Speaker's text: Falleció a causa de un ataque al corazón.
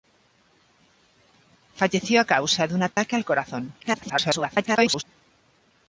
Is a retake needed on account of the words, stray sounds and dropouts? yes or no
yes